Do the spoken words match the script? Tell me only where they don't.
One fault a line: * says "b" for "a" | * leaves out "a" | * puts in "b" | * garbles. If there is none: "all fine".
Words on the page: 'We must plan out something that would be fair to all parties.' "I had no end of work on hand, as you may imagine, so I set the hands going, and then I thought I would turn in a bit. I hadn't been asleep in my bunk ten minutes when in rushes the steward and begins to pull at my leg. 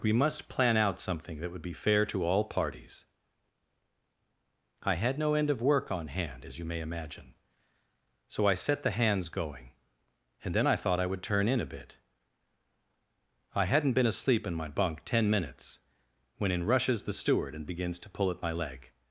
all fine